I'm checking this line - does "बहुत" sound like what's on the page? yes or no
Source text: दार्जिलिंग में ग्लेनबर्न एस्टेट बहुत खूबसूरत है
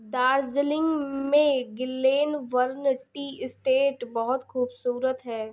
yes